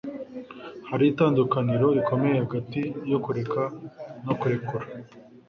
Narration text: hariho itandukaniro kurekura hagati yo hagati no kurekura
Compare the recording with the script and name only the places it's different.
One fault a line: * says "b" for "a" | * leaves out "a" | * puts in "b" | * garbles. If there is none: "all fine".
* says "rikomeye" for "kurekura"
* says "kureka" for "hagati"